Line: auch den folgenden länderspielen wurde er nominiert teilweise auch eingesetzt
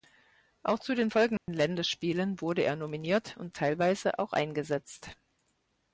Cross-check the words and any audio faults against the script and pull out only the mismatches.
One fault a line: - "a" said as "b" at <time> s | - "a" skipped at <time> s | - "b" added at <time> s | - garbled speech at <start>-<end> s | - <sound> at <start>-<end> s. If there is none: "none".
- "zu" added at 0.8 s
- dropout at 1.4-1.5 s
- "und" added at 3.4 s